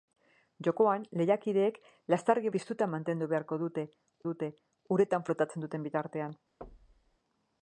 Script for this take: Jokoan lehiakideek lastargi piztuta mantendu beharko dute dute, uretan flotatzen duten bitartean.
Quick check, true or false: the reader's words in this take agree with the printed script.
true